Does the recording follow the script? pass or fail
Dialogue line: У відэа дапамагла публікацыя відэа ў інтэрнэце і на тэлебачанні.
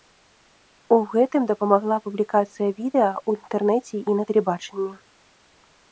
fail